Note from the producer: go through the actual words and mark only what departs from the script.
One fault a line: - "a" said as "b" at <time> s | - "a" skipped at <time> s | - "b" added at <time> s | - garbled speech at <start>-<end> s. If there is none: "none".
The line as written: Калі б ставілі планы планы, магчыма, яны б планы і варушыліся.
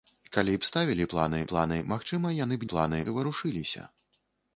none